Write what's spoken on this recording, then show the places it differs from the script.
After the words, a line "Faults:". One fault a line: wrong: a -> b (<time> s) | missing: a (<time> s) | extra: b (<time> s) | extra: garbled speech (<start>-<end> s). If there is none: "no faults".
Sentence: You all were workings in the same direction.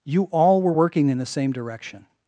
You all were working in the same direction.
Faults:
wrong: workings -> working (0.7 s)